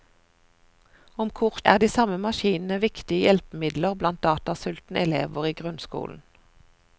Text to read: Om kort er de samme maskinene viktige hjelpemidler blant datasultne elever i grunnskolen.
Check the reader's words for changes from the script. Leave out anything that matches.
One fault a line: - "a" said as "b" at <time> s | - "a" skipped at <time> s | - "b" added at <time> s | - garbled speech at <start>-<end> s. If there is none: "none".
none